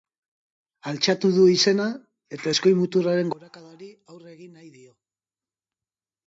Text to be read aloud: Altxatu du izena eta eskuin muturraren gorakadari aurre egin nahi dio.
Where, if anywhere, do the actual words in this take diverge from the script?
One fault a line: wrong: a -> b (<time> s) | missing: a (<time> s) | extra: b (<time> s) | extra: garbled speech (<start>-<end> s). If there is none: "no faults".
no faults